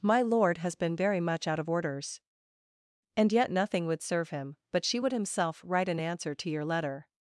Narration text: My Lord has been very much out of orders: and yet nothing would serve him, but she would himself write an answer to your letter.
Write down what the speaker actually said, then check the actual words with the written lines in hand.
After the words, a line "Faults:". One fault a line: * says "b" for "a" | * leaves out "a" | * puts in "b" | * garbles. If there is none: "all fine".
My Lord has been very much out of orders: and yet nothing would serve him, but she would himself write an answer to your letter.
Faults:
all fine